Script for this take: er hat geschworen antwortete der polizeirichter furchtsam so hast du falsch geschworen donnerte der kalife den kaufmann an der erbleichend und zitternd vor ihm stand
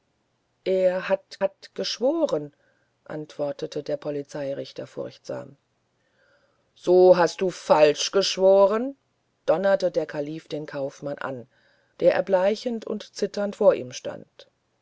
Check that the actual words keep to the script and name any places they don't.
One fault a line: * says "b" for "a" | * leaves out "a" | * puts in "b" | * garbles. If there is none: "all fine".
* puts in "hat"